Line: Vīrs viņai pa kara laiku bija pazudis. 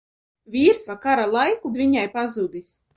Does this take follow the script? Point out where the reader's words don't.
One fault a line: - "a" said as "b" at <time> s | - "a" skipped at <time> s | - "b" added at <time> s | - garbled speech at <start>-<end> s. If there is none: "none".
- "viņai" skipped at 0.9 s
- "bija" said as "viņai" at 1.8 s